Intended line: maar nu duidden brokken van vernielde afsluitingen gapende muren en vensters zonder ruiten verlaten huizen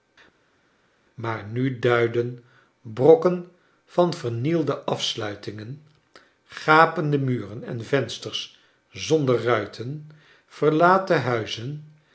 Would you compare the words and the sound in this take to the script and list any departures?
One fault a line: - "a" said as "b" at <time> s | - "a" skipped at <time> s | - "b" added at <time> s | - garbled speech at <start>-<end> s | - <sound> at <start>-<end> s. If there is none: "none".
none